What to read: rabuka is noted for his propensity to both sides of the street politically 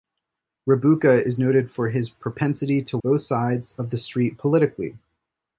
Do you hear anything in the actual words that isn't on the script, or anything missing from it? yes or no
no